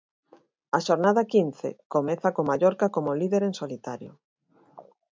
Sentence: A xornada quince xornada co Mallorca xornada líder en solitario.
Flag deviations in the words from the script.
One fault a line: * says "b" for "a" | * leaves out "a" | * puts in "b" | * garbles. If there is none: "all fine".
* says "comeza" for "xornada"
* says "como" for "xornada"